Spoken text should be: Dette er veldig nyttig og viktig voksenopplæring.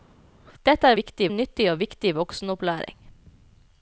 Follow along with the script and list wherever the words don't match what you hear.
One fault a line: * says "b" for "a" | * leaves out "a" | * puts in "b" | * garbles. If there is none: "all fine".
* says "viktig" for "veldig"